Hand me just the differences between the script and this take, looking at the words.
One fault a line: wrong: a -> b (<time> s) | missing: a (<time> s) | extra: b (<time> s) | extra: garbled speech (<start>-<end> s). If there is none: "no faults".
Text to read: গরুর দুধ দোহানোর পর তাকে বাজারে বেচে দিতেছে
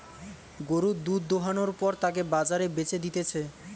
no faults